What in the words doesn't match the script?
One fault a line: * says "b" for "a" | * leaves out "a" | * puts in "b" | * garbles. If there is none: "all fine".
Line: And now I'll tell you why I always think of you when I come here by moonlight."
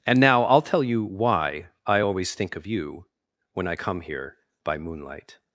all fine